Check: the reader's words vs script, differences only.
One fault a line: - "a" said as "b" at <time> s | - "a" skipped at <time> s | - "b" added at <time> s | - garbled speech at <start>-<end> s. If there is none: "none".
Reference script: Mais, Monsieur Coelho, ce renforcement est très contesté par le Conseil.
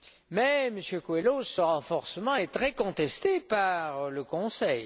none